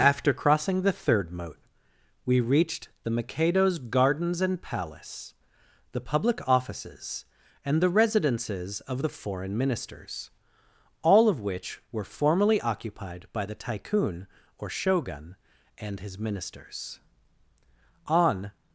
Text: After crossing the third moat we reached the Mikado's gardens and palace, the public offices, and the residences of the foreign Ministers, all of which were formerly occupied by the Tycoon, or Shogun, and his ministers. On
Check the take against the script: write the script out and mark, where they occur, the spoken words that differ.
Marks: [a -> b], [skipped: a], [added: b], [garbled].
After crossing the third moat we reached the Mikado's gardens and palace, the public offices, and the residences of the foreign Ministers, all of which were formerly occupied by the Tycoon, or Shogun, and his ministers. On